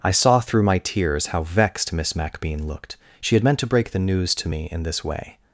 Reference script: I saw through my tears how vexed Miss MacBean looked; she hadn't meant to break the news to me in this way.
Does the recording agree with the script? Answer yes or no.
no